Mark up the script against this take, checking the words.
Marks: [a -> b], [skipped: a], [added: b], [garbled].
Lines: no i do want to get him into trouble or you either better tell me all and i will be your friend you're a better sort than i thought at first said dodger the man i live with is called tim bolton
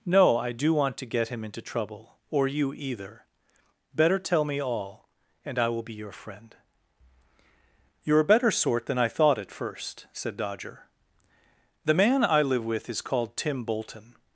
no i do want to get him into trouble or you either better tell me all and i will be your friend you're a better sort than i thought at first said dodger the man i live with is called tim bolton